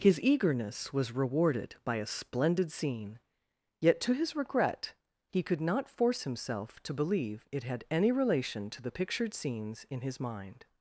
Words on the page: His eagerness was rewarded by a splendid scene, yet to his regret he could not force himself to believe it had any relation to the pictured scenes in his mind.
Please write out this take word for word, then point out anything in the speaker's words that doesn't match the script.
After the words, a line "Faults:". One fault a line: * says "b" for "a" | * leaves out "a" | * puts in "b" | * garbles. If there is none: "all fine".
His eagerness was rewarded by a splendid scene, yet to his regret he could not force himself to believe it had any relation to the pictured scenes in his mind.
Faults:
all fine